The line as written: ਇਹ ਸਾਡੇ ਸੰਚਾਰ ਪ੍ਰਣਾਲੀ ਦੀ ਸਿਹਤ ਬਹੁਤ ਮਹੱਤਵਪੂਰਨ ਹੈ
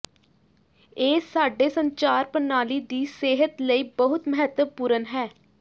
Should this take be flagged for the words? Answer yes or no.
yes